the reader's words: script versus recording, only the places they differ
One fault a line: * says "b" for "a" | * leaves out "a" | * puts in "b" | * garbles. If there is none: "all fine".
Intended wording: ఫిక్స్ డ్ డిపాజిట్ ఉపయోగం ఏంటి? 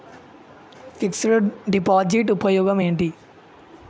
all fine